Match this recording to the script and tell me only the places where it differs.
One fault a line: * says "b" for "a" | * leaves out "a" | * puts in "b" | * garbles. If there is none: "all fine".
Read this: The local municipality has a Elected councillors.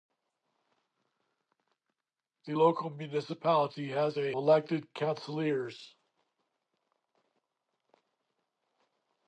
all fine